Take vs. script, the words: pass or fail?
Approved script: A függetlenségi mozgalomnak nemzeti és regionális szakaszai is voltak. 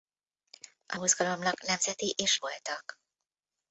fail